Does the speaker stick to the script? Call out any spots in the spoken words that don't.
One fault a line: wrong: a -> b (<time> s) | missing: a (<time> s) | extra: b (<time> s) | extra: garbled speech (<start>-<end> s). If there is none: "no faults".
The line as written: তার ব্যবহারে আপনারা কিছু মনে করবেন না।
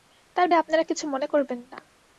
missing: ব্যবহারে (0.5 s)